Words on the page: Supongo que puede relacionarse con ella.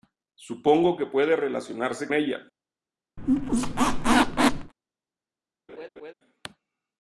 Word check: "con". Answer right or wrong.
wrong